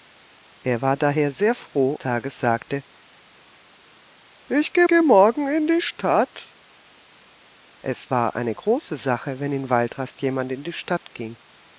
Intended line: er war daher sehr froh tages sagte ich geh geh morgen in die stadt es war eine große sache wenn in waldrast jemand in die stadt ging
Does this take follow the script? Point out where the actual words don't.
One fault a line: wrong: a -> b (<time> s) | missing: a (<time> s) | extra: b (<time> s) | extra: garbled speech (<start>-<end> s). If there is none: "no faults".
no faults